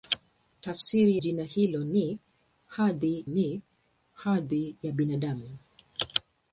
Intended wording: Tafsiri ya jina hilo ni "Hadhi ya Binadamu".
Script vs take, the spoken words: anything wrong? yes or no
yes